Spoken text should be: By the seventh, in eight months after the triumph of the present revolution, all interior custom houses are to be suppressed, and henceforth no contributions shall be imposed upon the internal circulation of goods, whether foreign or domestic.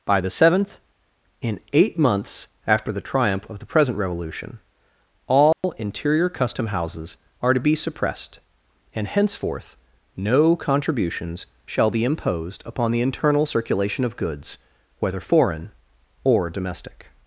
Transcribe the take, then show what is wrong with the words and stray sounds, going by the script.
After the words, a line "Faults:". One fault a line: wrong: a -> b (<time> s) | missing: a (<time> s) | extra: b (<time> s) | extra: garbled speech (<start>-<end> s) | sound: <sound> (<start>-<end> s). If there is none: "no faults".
By the seventh, in eight months after the triumph of the present revolution, all interior custom houses are to be suppressed, and henceforth no contributions shall be imposed upon the internal circulation of goods, whether foreign or domestic.
Faults:
sound: dropout (5.5-5.6 s)